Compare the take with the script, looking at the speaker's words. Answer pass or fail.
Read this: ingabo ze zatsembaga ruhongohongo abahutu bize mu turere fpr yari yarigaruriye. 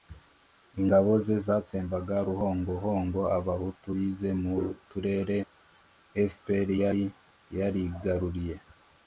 pass